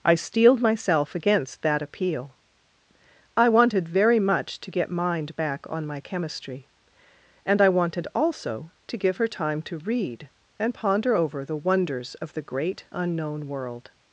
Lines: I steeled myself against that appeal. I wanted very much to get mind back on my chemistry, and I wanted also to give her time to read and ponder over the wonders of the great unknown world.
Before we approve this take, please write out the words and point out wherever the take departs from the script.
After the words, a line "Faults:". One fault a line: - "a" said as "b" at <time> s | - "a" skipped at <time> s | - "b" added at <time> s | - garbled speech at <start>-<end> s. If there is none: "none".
I steeled myself against that appeal. I wanted very much to get mind back on my chemistry, and I wanted also to give her time to read and ponder over the wonders of the great unknown world.
Faults:
none